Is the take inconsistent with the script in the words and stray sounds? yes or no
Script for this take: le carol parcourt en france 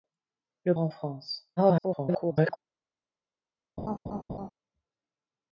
yes